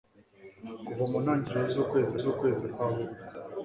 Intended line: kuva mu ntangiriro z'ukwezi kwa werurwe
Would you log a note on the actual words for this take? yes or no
yes